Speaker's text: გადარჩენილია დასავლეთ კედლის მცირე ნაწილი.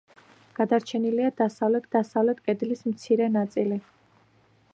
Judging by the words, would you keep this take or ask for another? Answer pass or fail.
fail